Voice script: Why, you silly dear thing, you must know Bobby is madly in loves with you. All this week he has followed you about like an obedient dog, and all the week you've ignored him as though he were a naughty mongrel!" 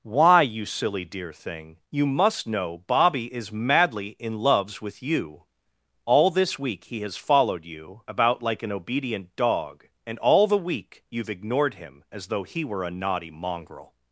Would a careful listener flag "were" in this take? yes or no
no